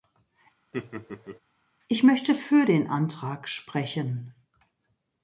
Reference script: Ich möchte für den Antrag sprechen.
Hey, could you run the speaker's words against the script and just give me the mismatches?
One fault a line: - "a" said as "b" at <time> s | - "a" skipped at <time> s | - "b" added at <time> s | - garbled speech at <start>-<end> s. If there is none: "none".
none